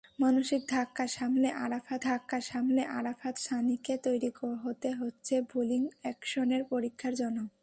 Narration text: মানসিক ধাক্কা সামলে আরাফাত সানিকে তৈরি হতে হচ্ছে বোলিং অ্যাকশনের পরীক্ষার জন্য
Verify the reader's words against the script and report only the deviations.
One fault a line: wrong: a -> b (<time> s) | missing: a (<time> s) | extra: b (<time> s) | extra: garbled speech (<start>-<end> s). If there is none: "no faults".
extra: ধাক্কা সামলে আরাফাত (2.0 s)